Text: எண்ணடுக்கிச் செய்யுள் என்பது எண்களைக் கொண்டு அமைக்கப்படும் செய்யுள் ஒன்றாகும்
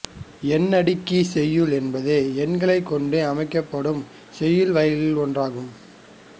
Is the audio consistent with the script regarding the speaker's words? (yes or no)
no